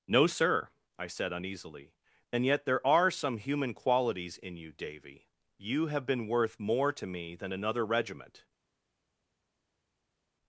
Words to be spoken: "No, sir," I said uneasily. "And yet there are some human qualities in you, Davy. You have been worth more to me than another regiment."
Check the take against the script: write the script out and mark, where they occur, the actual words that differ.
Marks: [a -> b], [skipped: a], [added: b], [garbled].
"No, sir," I said uneasily. "And yet there are some human qualities in you, Davy. You have been worth more to me than another regiment."